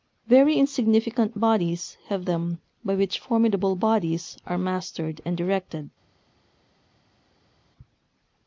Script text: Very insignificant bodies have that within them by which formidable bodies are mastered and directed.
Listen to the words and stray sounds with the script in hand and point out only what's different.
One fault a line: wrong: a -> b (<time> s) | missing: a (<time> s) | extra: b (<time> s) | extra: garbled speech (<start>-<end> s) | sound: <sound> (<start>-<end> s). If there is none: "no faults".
missing: that within (2.2 s)